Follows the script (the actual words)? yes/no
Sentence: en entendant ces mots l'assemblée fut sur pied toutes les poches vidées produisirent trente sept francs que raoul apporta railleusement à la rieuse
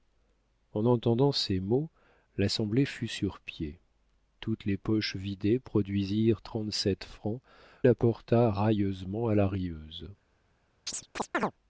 no